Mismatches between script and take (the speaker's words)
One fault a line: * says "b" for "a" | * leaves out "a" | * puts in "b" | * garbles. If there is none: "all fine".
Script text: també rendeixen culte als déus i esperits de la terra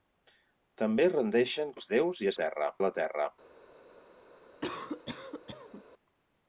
* leaves out "culte"
* says "terra" for "esperits"